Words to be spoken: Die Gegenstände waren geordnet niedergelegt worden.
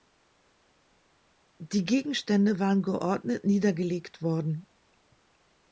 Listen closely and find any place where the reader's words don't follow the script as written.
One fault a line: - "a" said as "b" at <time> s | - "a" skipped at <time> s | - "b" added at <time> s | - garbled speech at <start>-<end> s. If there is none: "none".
none